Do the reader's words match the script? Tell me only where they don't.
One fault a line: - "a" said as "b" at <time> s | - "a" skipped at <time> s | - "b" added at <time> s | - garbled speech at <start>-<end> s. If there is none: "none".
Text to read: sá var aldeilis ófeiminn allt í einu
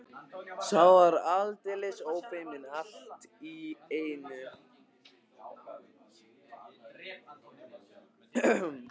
none